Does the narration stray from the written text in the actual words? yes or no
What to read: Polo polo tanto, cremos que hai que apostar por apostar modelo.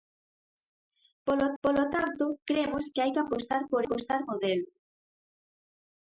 no